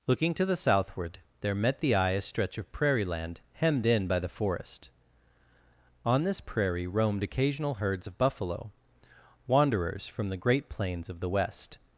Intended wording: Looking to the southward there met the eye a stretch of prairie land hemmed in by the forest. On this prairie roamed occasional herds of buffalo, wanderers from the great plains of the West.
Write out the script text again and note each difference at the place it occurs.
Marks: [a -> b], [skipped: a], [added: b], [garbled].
Looking to the southward there met the eye a stretch of prairie land hemmed in by the forest. On this prairie roamed occasional herds of buffalo, wanderers from the great plains of the West.